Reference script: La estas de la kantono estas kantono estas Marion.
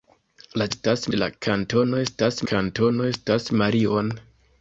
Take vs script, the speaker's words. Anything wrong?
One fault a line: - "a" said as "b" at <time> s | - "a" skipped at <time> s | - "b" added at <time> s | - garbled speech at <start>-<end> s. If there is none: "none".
none